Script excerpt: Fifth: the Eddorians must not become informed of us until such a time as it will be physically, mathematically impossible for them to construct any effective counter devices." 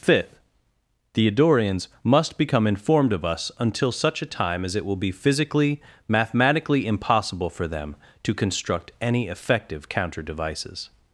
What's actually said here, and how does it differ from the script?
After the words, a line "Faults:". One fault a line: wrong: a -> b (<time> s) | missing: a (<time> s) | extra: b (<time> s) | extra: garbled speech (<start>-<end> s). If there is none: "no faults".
Fifth: the Eddorians must become informed of us until such a time as it will be physically, mathematically impossible for them to construct any effective counter devices."
Faults:
missing: not (2.4 s)